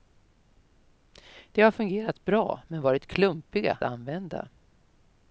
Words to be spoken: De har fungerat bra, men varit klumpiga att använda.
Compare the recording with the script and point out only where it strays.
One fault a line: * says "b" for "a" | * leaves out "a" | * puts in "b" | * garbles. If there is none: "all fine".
* leaves out "att"